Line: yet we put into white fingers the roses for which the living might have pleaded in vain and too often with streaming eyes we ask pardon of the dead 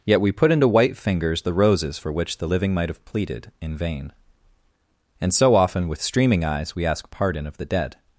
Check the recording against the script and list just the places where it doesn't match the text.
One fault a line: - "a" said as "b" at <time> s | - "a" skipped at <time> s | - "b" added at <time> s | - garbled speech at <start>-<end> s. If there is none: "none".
- "too" said as "so" at 5.3 s